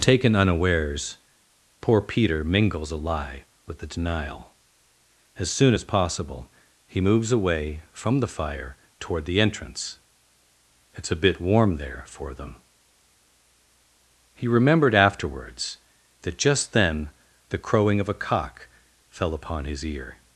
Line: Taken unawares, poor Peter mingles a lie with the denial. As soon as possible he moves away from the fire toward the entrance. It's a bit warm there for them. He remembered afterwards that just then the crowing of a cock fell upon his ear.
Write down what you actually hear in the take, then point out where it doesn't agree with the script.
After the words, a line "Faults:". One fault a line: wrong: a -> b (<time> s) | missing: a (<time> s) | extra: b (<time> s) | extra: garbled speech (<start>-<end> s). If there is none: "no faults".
Taken unawares, poor Peter mingles a lie with the denial. As soon as possible he moves away from the fire toward the entrance. It's a bit warm there for them. He remembered afterwards that just then the crowing of a cock fell upon his ear.
Faults:
no faults